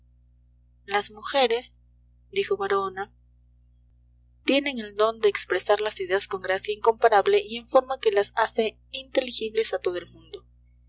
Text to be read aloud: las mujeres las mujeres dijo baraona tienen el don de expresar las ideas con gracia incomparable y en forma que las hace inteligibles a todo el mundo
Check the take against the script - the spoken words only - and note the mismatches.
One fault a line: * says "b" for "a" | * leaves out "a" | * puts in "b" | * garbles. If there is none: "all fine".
* leaves out "las mujeres"